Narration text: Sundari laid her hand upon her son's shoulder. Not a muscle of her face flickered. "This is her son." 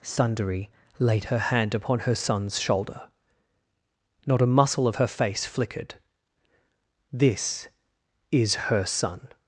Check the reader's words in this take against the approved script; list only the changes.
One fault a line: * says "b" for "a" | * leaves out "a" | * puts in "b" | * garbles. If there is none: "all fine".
all fine